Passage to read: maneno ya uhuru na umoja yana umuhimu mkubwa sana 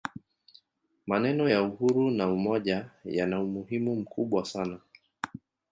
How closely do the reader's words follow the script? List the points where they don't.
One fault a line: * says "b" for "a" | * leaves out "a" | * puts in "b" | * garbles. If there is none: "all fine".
all fine